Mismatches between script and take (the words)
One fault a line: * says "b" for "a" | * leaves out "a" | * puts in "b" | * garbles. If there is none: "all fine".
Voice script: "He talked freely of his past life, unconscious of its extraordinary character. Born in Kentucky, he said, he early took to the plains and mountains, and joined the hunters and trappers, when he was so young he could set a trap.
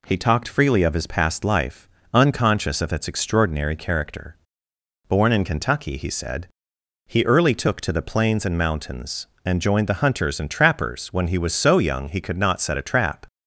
* puts in "not"